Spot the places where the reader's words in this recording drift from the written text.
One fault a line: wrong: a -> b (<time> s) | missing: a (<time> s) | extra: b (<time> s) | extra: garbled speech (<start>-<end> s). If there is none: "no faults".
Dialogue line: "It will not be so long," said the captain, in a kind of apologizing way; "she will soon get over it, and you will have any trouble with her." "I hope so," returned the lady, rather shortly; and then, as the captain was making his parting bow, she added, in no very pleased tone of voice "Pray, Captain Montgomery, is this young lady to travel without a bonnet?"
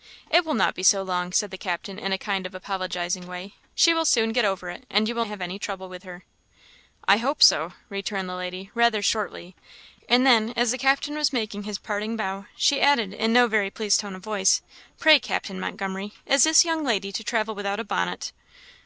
no faults